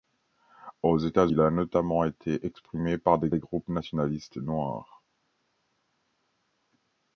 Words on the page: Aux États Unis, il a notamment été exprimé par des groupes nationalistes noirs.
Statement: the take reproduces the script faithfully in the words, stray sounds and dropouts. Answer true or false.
false